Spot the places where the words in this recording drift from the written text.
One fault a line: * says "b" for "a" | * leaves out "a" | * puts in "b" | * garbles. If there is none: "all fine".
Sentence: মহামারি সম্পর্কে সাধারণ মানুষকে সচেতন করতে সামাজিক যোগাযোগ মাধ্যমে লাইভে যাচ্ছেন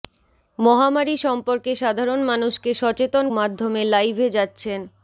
* leaves out "করতে সামাজিক যোগাযোগ"